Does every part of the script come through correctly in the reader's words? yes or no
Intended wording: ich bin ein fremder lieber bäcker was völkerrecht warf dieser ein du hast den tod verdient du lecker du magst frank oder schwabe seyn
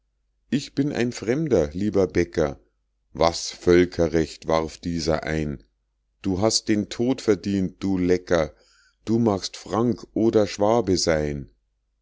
yes